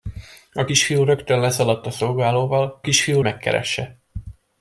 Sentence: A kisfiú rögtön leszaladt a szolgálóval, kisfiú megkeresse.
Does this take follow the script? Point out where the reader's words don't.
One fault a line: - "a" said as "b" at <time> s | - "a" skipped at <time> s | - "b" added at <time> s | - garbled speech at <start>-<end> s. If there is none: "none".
none